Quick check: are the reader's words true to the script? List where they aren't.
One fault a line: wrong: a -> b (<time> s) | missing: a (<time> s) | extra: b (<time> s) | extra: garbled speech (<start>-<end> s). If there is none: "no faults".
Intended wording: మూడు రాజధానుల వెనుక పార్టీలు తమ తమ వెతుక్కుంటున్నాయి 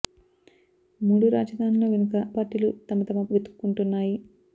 no faults